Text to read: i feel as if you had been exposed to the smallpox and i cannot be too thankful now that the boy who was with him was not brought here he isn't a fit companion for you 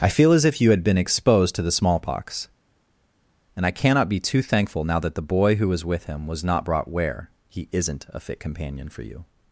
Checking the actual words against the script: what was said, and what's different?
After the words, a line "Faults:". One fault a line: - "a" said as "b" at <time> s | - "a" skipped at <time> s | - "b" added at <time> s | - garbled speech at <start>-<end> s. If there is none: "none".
i feel as if you had been exposed to the smallpox and i cannot be too thankful now that the boy who was with him was not brought where he isn't a fit companion for you
Faults:
- "here" said as "where" at 6.9 s